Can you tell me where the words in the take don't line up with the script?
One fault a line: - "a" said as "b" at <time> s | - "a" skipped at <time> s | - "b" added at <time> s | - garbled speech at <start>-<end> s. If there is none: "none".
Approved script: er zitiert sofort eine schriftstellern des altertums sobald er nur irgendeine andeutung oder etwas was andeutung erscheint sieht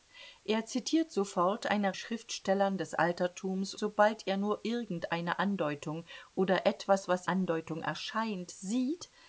none